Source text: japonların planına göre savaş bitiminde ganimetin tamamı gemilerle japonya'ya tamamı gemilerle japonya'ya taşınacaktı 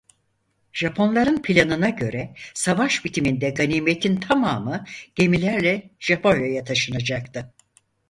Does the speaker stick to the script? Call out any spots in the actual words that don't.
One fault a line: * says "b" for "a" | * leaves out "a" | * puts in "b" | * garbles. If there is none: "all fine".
* leaves out "tamamı gemilerle japonya'ya"